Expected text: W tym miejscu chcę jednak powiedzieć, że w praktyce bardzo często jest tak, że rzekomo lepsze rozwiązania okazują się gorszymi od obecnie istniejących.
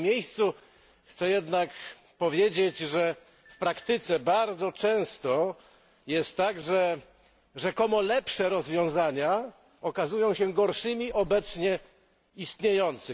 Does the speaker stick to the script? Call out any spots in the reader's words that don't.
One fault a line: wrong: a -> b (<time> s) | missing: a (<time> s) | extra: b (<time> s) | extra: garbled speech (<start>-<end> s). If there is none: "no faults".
missing: od (11.1 s)